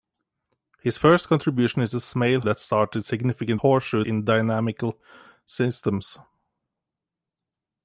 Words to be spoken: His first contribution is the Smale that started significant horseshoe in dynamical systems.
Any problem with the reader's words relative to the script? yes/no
no